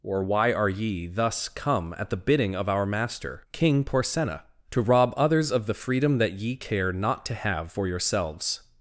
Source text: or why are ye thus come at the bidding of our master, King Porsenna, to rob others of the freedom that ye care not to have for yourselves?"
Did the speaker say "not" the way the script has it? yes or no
yes